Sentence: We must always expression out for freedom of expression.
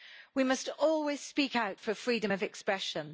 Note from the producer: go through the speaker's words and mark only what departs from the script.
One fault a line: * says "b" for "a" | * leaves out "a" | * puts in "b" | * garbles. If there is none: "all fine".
* says "speak" for "expression"